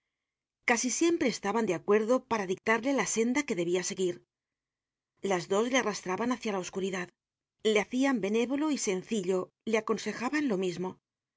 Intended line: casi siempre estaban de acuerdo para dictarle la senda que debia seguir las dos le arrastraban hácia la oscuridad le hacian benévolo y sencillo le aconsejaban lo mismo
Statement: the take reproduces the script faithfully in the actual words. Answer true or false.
true